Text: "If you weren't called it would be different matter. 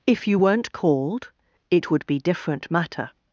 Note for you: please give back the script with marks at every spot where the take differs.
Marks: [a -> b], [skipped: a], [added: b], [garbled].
"If you weren't called it would be different matter.